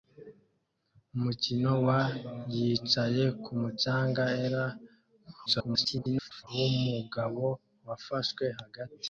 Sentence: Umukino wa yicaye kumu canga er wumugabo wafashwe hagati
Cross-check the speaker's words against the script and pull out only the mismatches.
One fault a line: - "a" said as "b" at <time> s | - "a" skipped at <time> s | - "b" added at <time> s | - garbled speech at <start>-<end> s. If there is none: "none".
- garbled speech at 5.5-6.5 s